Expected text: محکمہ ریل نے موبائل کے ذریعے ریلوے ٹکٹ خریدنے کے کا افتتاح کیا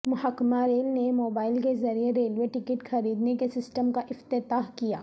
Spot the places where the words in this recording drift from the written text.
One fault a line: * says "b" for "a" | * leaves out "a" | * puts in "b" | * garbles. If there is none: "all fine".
* puts in "سسٹم"